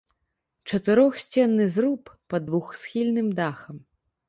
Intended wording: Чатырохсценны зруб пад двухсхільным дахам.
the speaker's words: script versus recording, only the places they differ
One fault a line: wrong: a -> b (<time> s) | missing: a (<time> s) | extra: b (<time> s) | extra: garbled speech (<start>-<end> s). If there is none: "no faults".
no faults